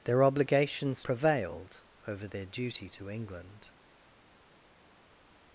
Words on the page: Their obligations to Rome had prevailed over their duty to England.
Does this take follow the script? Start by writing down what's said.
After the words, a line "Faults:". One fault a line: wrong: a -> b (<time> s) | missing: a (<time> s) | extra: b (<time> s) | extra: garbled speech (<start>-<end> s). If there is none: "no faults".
Their obligations prevailed over their duty to England.
Faults:
missing: to Rome had (1.0 s)